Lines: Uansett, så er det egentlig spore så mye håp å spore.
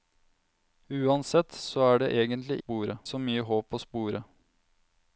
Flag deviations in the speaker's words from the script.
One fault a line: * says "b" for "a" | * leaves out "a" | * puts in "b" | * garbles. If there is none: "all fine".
all fine